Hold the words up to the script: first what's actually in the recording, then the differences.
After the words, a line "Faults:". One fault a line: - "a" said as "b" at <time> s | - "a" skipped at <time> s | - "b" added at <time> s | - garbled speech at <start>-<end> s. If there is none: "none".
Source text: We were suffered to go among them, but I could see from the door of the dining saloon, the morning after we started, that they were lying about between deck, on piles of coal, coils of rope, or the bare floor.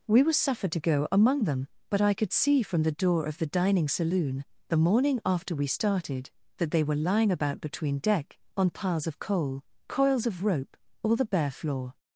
We were suffered to go among them, but I could see from the door of the dining saloon, the morning after we started, that they were lying about between deck, on piles of coal, coils of rope, or the bare floor.
Faults:
none